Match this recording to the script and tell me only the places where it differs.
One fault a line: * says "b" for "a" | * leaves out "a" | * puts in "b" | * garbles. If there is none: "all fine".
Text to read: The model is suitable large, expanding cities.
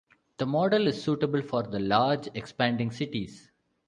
* puts in "for the"